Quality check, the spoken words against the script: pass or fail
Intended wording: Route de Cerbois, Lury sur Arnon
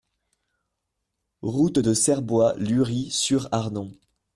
pass